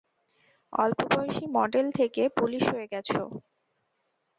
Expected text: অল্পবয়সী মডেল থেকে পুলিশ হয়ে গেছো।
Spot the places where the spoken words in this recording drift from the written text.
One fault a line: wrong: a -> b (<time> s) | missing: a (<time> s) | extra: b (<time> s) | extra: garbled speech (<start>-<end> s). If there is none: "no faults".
no faults